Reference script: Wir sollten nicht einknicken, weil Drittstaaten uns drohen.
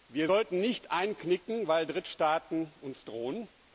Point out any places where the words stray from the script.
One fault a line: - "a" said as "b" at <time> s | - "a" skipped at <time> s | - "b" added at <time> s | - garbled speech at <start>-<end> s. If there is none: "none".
none